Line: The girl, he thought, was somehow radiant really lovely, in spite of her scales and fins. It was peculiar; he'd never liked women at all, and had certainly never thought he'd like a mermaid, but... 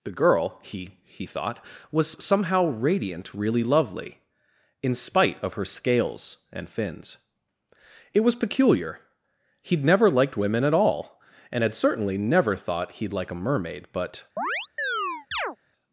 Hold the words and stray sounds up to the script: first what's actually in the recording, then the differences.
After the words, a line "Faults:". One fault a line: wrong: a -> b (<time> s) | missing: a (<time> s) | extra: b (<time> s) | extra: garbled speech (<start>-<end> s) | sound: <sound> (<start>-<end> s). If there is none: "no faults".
The girl, he he thought, was somehow radiant really lovely, in spite of her scales and fins. It was peculiar; he'd never liked women at all, and had certainly never thought he'd like a mermaid, but...
Faults:
extra: he (1.0 s)
sound: chirp (14.4-15.6 s)